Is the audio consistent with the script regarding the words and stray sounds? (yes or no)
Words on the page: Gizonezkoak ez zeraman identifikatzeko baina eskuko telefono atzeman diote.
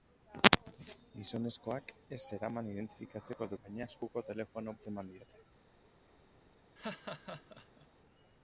no